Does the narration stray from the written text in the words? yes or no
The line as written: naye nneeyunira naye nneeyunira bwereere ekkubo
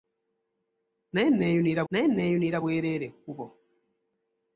no